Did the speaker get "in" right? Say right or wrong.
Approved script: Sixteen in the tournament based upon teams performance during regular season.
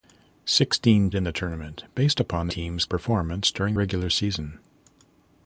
right